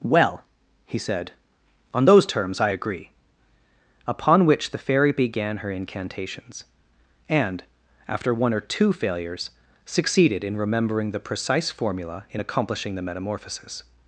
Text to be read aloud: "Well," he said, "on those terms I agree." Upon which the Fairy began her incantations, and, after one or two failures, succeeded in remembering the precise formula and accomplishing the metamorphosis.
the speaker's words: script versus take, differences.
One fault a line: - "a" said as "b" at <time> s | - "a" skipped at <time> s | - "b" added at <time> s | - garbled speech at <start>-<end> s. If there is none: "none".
- "and" said as "in" at 12.3 s